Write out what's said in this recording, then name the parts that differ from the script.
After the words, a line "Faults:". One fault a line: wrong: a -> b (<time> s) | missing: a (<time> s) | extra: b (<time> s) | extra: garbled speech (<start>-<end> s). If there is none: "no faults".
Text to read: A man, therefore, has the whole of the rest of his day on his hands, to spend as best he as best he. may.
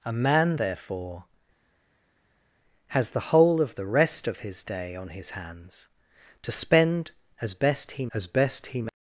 A man, therefore, has the whole of the rest of his day on his hands, to spend as best he as best he. may.
Faults:
no faults